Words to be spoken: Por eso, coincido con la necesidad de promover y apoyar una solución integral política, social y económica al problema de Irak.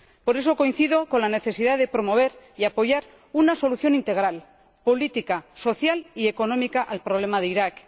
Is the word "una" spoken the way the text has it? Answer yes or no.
yes